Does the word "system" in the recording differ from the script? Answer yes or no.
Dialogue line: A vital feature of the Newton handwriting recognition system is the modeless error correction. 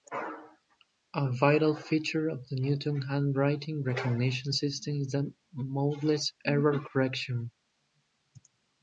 no